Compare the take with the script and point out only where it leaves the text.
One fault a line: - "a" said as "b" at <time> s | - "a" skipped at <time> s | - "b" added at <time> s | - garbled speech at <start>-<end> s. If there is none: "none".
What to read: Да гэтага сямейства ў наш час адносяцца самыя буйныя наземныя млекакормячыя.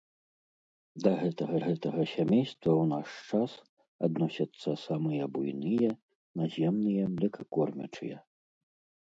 - "гэтага" added at 1.6 s